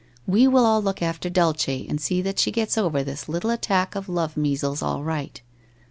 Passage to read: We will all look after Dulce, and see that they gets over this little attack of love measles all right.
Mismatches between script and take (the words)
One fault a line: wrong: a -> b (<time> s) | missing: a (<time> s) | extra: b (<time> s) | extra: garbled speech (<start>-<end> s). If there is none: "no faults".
wrong: they -> she (2.4 s)